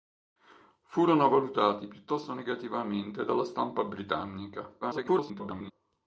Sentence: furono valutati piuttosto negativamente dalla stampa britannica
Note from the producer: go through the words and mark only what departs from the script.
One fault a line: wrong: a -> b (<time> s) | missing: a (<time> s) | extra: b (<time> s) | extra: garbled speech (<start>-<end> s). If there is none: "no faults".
extra: garbled speech (4.8-5.7 s)